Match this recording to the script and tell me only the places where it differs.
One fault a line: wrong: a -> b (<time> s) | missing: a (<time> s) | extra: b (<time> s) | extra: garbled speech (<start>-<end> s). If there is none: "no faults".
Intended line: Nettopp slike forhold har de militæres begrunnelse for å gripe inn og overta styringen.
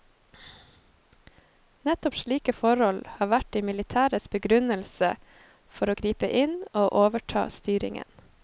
extra: vært (3.3 s)